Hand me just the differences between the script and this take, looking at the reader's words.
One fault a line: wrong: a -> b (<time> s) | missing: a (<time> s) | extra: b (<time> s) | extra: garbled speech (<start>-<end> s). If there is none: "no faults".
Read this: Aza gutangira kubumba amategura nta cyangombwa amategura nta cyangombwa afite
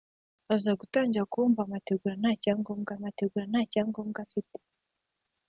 no faults